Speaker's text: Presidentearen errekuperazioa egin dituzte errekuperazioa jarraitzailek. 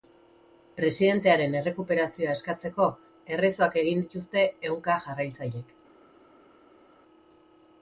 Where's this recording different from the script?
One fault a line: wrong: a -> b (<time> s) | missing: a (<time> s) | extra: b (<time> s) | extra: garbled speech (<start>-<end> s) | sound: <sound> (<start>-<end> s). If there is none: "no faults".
extra: eskatzeko errezoak (2.4 s)
wrong: errekuperazioa -> ehunka (4.7 s)